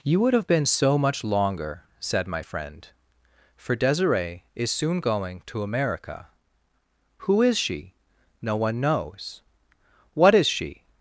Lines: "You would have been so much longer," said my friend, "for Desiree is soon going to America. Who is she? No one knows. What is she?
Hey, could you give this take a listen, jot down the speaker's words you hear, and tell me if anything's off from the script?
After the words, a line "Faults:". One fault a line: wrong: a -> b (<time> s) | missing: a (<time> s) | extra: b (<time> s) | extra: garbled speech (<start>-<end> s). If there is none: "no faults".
"You would have been so much longer," said my friend, "for Desiree is soon going to America. Who is she? No one knows. What is she?
Faults:
no faults